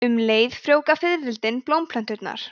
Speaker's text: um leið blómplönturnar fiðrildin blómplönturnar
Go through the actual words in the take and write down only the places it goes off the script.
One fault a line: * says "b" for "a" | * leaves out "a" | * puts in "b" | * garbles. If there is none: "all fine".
* says "frjóvga" for "blómplönturnar"